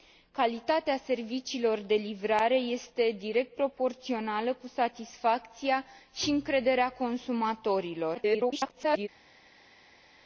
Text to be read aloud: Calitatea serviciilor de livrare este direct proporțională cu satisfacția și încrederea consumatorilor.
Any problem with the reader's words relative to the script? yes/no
yes